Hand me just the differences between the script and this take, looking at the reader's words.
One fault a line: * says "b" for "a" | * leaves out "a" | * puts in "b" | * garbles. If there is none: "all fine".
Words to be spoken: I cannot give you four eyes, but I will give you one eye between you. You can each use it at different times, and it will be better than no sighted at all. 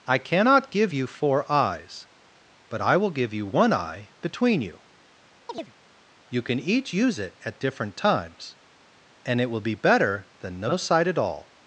* says "sight" for "sighted"